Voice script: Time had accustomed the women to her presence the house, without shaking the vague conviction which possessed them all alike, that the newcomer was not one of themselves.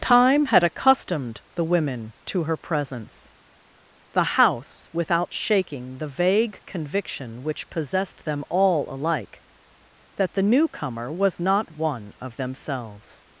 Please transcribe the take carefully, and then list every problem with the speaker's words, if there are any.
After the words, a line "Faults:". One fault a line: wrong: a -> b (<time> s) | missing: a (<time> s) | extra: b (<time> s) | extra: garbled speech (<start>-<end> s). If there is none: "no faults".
Time had accustomed the women to her presence the house, without shaking the vague conviction which possessed them all alike, that the newcomer was not one of themselves.
Faults:
no faults